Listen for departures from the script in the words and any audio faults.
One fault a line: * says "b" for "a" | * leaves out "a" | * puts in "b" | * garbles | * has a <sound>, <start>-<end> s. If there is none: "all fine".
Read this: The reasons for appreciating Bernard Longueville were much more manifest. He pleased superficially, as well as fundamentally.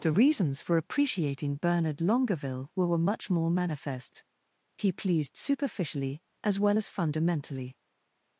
* puts in "were"